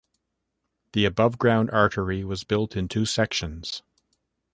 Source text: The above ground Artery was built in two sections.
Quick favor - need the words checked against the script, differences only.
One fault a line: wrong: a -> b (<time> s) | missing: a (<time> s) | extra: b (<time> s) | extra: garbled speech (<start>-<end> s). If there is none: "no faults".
no faults